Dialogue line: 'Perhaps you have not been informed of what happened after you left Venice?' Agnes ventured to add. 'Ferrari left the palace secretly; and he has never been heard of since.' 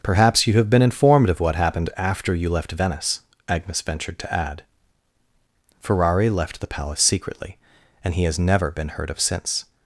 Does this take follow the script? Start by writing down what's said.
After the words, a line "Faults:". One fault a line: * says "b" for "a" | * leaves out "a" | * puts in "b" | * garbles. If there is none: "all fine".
'Perhaps you have been informed of what happened after you left Venice?' Agnes ventured to add. 'Ferrari left the palace secretly; and he has never been heard of since.'
Faults:
* leaves out "not"